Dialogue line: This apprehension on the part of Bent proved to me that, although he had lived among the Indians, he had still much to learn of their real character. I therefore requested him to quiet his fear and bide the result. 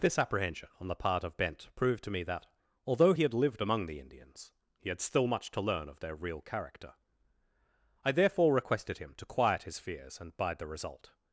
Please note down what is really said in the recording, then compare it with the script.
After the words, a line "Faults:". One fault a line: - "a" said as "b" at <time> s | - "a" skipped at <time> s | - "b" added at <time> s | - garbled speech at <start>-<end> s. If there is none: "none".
This apprehension on the part of Bent proved to me that, although he had lived among the Indians, he had still much to learn of their real character. I therefore requested him to quiet his fears and bide the result.
Faults:
- "fear" said as "fears" at 9.8 s